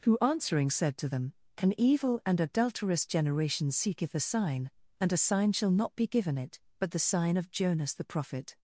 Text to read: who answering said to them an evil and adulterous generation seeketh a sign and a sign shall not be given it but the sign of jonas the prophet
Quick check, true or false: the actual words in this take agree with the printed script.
true